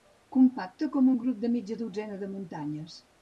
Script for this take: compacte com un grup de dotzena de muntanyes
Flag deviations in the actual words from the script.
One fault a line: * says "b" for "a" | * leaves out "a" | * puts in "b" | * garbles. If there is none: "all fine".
* puts in "mitja"